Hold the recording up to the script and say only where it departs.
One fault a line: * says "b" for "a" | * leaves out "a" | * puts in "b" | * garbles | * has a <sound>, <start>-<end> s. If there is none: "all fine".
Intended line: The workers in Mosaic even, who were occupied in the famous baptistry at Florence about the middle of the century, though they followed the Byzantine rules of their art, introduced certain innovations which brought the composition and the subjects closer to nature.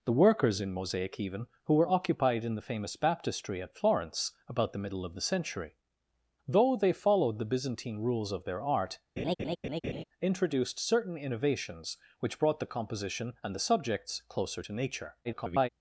* has a laugh, 9.2-10.0 s
* garbles